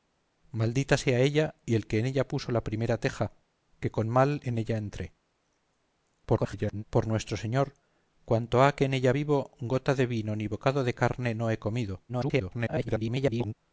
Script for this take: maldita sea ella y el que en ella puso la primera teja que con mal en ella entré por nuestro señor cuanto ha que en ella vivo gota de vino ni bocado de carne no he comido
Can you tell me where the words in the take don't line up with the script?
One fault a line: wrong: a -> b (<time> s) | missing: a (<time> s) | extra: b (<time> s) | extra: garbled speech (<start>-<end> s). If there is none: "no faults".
extra: garbled speech (6.3-6.8 s)
extra: garbled speech (12.1-13.5 s)